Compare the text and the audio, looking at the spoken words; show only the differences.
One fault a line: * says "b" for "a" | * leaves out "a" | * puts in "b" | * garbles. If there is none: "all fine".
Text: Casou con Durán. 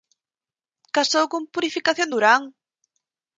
* puts in "Purificación"